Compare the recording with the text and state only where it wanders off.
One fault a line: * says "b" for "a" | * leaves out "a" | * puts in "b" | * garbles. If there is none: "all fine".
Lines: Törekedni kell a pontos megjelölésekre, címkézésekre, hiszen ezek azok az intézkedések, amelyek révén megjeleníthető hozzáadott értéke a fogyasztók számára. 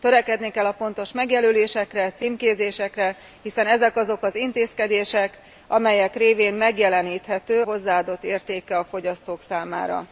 all fine